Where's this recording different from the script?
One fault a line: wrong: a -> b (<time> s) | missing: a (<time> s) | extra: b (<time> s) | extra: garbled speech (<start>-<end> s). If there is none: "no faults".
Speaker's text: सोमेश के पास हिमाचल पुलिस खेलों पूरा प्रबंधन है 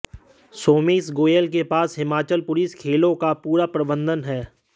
extra: गोयल (1.1 s)
extra: का (3.2 s)